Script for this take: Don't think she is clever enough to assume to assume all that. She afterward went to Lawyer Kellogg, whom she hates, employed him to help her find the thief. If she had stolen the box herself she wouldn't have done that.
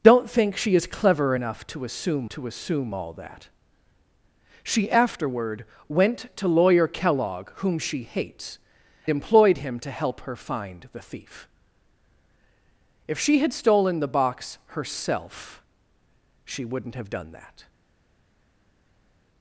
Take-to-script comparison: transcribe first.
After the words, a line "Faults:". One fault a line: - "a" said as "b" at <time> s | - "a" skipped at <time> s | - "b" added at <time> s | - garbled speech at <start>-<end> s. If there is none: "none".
Don't think she is clever enough to assume to assume all that. She afterward went to Lawyer Kellogg, whom she hates, employed him to help her find the thief. If she had stolen the box herself she wouldn't have done that.
Faults:
none